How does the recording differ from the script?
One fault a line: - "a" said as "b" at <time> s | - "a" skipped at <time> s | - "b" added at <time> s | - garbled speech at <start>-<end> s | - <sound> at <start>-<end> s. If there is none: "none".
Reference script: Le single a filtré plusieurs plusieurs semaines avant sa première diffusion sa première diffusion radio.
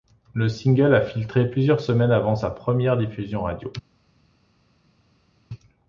- "plusieurs" skipped at 1.8 s
- "sa première diffusion" skipped at 3.4 s